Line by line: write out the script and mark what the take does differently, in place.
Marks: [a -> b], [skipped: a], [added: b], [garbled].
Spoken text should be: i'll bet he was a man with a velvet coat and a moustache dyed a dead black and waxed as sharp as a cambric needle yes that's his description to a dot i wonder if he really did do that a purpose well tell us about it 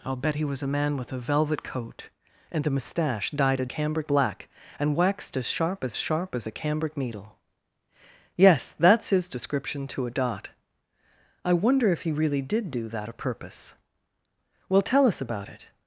i'll bet he was a man with a velvet coat and a moustache dyed a [dead -> cambric] black and waxed as sharp as [added: sharp as] a cambric needle yes that's his description to a dot i wonder if he really did do that a purpose well tell us about it